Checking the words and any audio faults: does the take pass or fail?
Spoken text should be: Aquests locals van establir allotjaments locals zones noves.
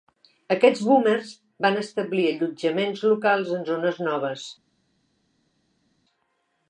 fail